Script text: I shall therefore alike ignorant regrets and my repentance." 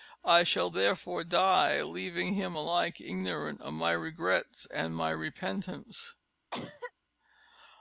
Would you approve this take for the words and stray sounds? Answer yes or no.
no